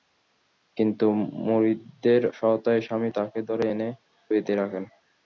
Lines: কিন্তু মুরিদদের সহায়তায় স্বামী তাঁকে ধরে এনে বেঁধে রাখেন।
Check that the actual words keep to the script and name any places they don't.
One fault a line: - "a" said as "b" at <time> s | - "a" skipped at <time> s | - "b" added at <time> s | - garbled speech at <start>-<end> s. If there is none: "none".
none